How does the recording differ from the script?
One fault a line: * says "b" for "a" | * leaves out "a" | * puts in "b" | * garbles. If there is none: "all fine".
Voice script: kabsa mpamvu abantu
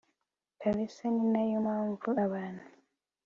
* puts in "ninayo"